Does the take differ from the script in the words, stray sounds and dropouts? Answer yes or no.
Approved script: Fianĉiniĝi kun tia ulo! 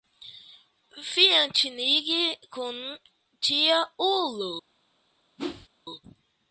yes